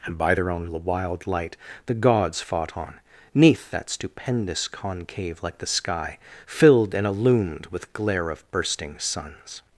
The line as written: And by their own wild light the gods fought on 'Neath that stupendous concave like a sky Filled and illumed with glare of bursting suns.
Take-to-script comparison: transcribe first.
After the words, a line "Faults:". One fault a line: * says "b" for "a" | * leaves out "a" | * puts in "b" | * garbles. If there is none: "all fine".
And by their own wild light the gods fought on 'Neath that stupendous concave like the sky Filled and illumed with glare of bursting suns.
Faults:
* says "the" for "a"